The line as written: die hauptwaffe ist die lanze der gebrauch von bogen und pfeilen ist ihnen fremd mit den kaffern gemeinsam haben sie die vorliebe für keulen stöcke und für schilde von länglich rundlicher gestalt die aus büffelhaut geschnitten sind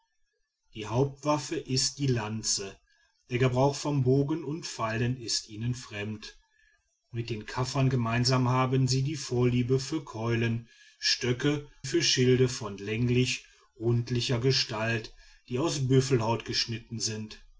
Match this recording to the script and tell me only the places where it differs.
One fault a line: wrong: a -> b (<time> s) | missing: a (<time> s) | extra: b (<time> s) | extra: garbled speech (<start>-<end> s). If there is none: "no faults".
missing: und (11.7 s)